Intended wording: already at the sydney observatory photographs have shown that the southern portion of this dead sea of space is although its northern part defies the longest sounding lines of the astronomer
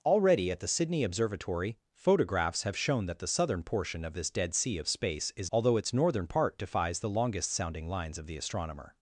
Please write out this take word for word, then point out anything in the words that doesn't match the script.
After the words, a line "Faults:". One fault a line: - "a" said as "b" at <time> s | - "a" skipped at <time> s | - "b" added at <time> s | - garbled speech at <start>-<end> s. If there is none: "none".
already at the sydney observatory photographs have shown that the southern portion of this dead sea of space is although its northern part defies the longest sounding lines of the astronomer
Faults:
none